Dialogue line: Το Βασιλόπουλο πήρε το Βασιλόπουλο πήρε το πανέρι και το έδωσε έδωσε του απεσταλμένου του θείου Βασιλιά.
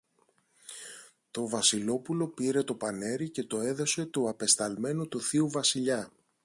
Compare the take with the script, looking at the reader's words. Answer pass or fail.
fail